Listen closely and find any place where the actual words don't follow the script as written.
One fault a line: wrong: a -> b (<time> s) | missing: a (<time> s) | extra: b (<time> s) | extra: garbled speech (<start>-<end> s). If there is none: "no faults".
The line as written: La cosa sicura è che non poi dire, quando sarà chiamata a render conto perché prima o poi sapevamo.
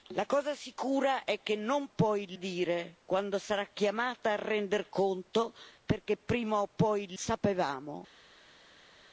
no faults